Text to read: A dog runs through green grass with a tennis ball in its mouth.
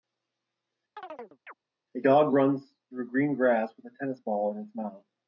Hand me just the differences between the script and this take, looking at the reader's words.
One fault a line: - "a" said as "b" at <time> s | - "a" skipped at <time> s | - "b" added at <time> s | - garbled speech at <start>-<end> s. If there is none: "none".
none